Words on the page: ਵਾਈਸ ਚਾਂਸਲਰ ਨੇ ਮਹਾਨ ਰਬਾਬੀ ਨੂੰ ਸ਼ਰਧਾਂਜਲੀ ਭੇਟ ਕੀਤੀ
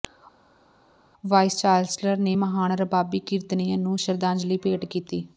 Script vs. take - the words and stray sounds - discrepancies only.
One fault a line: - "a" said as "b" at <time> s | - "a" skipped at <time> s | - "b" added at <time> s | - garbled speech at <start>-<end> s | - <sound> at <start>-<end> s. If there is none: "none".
- "ਕੀਰਤਨੀਏ" added at 3.2 s